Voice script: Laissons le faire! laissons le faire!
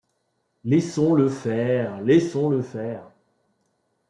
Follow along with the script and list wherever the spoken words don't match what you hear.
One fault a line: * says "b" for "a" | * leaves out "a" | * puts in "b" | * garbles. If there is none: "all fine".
all fine